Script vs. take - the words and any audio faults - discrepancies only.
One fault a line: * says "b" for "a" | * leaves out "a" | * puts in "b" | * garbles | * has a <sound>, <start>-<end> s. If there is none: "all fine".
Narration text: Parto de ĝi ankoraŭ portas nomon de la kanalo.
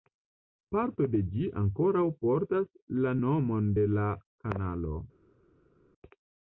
* puts in "la"